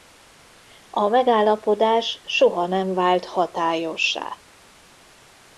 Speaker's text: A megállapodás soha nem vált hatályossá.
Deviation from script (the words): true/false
false